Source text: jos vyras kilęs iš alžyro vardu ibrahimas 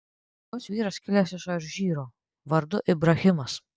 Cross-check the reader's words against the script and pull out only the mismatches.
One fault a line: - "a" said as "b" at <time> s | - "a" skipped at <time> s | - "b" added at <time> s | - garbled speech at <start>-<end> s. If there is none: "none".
none